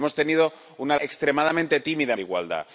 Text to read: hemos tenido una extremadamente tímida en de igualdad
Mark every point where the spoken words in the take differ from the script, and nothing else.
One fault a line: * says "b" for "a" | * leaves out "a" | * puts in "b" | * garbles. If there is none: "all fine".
all fine